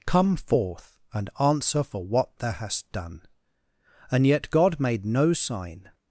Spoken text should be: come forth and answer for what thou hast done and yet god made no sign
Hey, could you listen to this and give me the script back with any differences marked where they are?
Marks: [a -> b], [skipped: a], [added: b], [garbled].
come forth and answer for what thou hast done and yet god made no sign